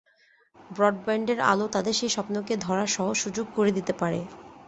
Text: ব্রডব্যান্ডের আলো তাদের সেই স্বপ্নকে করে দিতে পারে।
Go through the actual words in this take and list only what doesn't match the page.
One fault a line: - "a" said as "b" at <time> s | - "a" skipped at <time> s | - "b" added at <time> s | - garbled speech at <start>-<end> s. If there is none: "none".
- "ধরার সহজ সুযোগ" added at 2.6 s